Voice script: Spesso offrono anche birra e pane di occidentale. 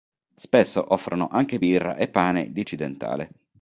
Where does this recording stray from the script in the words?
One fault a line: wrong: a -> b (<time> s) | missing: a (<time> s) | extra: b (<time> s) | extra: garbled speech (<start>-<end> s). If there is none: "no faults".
no faults